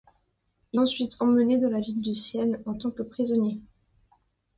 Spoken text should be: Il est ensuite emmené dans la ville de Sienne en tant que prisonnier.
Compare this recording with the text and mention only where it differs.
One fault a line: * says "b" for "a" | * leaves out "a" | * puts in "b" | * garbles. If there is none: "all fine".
* leaves out "est"